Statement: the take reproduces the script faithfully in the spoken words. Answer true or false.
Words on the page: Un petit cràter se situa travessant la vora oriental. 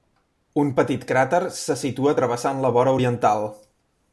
true